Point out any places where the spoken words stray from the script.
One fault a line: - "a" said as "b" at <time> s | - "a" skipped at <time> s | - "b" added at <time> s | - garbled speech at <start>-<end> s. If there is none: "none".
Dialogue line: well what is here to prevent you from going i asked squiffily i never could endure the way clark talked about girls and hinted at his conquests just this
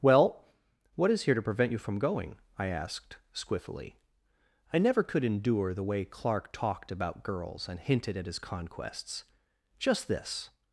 none